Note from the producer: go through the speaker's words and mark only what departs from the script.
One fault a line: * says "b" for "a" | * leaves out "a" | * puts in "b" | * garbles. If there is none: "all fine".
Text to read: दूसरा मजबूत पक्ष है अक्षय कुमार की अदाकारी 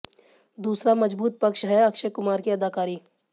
all fine